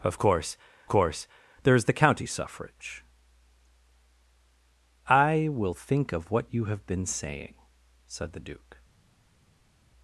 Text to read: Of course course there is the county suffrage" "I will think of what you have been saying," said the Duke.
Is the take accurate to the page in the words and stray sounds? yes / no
yes